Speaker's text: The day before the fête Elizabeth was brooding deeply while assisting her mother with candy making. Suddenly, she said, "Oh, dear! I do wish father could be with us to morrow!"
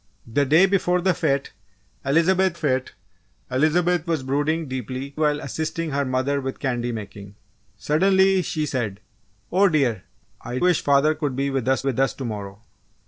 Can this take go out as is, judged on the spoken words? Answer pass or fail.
fail